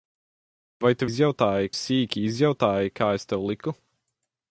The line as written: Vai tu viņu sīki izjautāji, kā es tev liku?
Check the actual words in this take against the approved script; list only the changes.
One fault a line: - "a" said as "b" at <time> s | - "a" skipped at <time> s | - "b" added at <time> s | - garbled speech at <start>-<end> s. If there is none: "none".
- "viņu" said as "izjautāji" at 1.1 s